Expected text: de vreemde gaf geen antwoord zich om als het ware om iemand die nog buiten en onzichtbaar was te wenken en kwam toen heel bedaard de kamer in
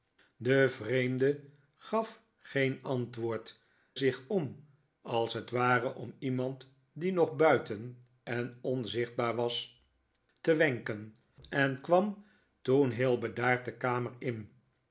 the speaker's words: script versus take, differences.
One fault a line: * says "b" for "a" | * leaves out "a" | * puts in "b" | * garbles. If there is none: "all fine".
all fine